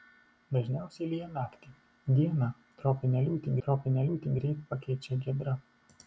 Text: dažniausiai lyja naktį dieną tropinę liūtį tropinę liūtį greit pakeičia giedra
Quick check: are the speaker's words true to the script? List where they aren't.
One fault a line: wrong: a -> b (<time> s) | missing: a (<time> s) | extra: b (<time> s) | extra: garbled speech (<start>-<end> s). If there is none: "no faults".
no faults